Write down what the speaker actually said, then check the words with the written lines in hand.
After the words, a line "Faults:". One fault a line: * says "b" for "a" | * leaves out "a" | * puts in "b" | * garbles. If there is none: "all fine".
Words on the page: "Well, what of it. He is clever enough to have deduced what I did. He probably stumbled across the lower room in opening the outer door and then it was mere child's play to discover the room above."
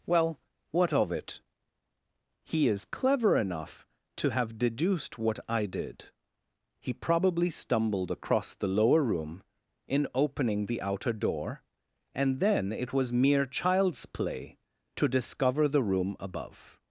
"Well, what of it. He is clever enough to have deduced what I did. He probably stumbled across the lower room in opening the outer door and then it was mere child's play to discover the room above."
Faults:
all fine